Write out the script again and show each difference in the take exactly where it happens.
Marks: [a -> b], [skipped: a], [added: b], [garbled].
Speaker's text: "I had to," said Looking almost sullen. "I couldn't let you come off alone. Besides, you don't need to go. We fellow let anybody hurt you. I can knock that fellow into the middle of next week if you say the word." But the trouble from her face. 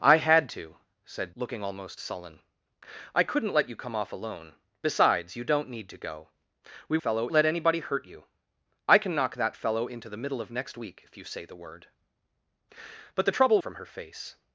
"I had to," said Looking almost sullen. "I couldn't let you come off alone. Besides, you don't need to go. We fellow let anybody hurt you. I can knock that fellow into the middle of next week if you say the word." But the trouble from her face.